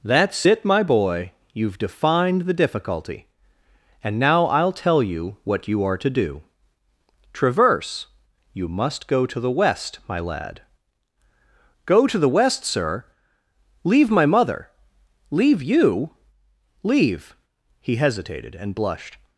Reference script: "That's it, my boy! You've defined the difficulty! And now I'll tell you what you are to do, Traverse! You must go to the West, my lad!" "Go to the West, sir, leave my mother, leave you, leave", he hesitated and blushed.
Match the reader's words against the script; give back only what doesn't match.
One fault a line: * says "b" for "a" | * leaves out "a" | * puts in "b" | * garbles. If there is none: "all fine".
all fine